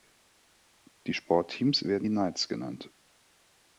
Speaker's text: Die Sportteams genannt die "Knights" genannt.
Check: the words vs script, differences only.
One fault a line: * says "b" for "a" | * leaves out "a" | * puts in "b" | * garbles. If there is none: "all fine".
* says "werden" for "genannt"